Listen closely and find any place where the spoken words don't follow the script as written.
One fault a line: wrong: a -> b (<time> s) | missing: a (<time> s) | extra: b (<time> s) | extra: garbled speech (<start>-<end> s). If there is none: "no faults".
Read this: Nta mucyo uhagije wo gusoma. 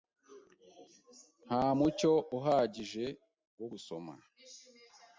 no faults